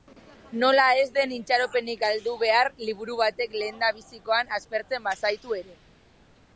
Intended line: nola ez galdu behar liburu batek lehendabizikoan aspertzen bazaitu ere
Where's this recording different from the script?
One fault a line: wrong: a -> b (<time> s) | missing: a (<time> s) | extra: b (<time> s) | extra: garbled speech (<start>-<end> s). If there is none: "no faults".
extra: den itxaropenik (1.2 s)